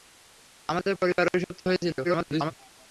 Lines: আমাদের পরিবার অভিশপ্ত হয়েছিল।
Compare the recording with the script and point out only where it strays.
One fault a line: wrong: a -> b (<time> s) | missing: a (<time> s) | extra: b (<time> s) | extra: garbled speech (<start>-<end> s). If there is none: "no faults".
extra: garbled speech (2.0-2.5 s)